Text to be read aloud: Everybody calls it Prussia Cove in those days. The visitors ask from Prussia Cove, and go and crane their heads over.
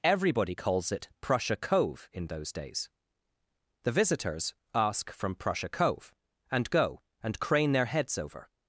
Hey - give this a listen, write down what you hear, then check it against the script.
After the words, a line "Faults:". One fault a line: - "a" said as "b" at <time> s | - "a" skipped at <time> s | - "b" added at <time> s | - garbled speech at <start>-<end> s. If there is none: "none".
Everybody calls it Prussia Cove in those days. The visitors ask from Prussia Cove, and go and crane their heads over.
Faults:
none